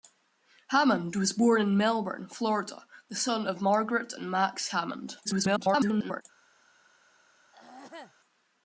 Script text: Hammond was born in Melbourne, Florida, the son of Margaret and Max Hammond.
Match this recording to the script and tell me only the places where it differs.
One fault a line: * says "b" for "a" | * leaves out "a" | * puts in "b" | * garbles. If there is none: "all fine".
* garbles